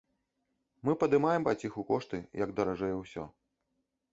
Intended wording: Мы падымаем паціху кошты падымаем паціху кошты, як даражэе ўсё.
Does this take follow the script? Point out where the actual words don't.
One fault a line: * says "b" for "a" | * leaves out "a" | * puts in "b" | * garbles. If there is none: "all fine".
* leaves out "падымаем паціху кошты"